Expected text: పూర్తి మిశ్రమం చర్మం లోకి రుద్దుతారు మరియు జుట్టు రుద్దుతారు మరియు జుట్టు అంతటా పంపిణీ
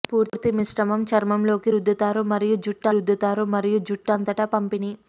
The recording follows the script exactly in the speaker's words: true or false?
true